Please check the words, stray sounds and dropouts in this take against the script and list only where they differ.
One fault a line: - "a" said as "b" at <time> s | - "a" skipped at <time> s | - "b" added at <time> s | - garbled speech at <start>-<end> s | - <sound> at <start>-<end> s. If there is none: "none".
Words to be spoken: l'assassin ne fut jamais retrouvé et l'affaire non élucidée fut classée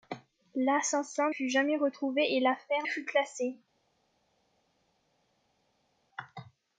- "ne" skipped at 1.3 s
- "non élucidée" skipped at 2.9 s